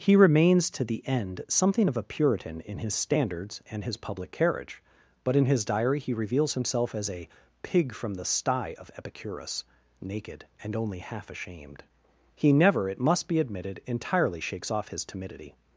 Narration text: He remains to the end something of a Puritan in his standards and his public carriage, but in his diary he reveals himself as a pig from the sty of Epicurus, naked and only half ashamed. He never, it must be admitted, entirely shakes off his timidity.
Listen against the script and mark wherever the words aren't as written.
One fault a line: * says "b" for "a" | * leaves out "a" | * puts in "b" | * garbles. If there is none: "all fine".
all fine